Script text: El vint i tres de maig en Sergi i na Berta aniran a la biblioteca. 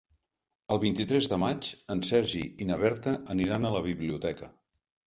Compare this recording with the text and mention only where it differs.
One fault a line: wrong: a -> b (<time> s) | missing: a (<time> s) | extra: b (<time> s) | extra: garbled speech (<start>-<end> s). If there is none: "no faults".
no faults